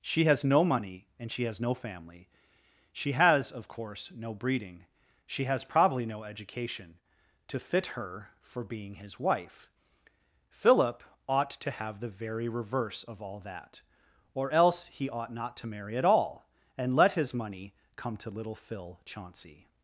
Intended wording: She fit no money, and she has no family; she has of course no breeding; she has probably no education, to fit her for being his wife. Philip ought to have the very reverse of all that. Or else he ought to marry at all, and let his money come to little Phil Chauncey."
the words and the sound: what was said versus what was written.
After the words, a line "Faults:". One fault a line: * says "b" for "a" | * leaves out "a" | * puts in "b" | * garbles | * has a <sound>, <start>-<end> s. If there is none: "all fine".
She has no money, and she has no family; she has of course no breeding; she has probably no education, to fit her for being his wife. Philip ought to have the very reverse of all that. Or else he ought not to marry at all, and let his money come to little Phil Chauncey."
Faults:
* says "has" for "fit"
* puts in "not"